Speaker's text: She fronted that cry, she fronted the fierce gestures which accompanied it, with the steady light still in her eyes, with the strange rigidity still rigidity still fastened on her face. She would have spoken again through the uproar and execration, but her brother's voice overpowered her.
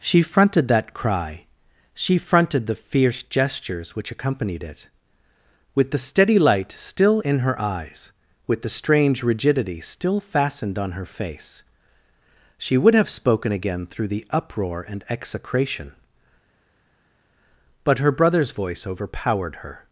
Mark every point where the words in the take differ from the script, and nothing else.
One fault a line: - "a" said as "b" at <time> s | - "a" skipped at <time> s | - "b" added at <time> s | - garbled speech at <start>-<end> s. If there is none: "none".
- "rigidity still" skipped at 10.2 s